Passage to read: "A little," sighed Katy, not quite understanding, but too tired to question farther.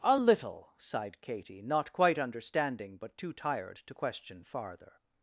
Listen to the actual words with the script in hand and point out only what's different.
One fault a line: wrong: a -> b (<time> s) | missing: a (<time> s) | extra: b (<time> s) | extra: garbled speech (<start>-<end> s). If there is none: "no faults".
no faults